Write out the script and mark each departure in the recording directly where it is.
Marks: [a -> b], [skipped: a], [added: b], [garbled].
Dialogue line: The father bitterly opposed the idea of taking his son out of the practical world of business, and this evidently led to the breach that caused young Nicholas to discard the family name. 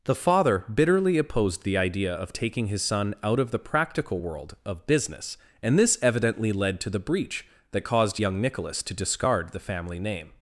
The father bitterly opposed the idea of taking his son out of the practical world of business, and this evidently led to the breach that caused young Nicholas to discard the family name.